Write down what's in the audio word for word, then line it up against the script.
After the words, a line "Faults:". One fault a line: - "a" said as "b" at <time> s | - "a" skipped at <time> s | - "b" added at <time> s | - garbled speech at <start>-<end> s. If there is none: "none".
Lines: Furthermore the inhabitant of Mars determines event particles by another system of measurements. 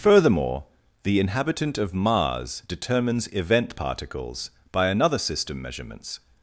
Furthermore the inhabitant of Mars determines event particles by another system measurements.
Faults:
- "of" skipped at 5.6 s